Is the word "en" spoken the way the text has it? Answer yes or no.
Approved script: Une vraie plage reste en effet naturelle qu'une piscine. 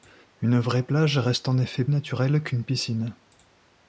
yes